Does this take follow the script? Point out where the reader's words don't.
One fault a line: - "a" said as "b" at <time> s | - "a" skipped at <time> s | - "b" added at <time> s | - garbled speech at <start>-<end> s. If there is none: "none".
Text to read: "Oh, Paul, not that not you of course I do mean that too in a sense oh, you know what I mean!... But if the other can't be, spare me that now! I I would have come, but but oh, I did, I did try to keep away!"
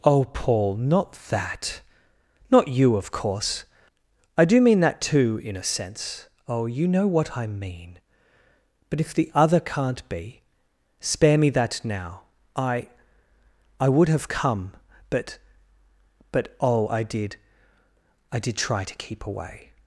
none